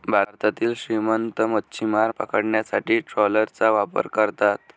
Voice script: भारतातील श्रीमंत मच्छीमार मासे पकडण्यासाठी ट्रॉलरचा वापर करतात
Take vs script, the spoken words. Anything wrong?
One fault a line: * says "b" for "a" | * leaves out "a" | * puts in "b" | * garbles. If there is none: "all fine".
* leaves out "मासे"